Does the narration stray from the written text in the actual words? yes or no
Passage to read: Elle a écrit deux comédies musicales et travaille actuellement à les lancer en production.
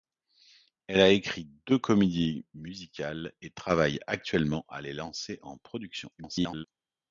yes